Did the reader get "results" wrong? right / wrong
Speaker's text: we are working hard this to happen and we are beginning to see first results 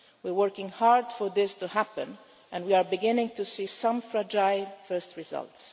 right